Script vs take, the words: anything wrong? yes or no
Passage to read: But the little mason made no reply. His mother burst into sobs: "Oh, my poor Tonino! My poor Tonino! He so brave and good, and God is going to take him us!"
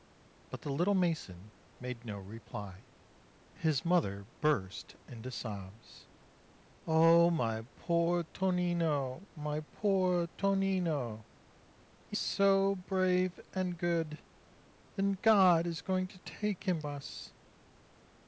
no